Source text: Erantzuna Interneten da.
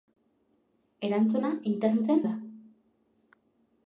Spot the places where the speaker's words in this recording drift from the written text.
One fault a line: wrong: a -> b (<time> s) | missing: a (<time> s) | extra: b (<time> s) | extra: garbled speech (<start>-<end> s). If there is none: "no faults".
no faults